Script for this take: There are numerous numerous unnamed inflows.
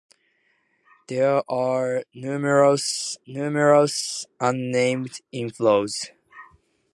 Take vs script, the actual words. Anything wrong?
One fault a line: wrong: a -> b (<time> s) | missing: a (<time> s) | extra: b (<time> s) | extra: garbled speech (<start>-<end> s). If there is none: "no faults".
no faults